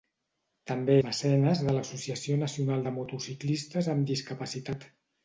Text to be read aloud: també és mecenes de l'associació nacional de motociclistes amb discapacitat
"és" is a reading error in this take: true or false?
true